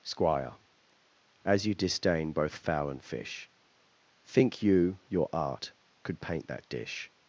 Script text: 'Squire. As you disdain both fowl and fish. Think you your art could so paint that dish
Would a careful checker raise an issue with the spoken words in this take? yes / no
yes